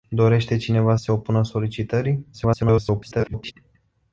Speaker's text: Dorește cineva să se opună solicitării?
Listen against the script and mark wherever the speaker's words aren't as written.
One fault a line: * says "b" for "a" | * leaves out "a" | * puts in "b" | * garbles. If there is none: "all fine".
* leaves out "să"
* garbles